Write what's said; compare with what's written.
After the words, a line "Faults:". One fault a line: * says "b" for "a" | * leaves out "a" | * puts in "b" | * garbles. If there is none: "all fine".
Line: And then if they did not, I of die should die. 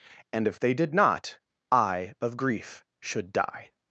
And if they did not, I of grief should die.
Faults:
* leaves out "then"
* says "grief" for "die"